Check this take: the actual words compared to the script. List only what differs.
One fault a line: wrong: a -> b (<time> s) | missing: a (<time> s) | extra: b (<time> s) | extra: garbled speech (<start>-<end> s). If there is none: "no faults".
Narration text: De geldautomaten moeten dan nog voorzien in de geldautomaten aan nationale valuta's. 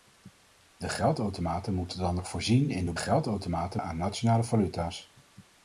no faults